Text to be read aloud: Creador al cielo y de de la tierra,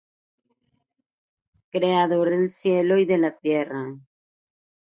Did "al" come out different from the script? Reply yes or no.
yes